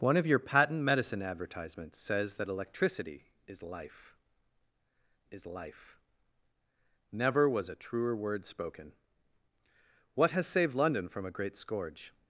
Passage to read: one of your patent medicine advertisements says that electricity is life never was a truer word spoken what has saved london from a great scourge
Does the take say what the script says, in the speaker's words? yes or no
no